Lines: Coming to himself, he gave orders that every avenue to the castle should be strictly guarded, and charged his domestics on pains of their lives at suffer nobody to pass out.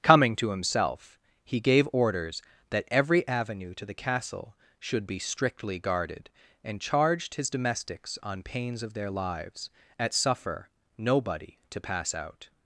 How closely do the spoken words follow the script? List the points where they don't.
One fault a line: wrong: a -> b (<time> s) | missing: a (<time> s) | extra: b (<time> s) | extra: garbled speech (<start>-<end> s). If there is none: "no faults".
no faults